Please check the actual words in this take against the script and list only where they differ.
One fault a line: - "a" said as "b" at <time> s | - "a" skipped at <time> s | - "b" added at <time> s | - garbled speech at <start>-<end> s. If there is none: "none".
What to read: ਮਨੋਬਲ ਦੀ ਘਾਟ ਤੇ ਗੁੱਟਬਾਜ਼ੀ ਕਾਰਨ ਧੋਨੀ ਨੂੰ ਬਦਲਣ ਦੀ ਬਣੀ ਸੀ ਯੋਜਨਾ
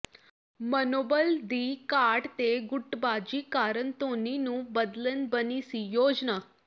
- "ਦੀ" skipped at 5.3 s